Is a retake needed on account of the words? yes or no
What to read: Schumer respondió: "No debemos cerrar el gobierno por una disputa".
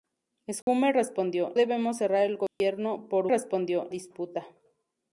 yes